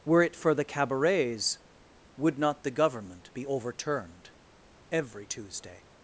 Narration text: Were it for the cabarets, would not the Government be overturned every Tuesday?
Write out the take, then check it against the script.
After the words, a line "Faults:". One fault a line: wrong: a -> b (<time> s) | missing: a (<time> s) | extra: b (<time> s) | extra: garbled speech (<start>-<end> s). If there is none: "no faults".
Were it for the cabarets, would not the Government be overturned every Tuesday?
Faults:
no faults